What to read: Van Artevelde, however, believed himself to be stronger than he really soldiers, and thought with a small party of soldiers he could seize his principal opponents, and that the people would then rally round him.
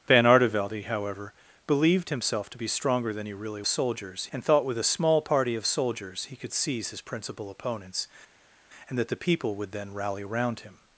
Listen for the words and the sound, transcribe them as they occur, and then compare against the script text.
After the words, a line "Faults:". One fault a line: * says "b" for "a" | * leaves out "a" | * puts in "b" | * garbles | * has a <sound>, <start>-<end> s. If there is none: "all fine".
Van Artevelde, however, believed himself to be stronger than he really soldiers, and thought with a small party of soldiers he could seize his principal opponents, and that the people would then rally round him.
Faults:
all fine